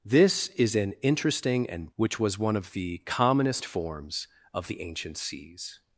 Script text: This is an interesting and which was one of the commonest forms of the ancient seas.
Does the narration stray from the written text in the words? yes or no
no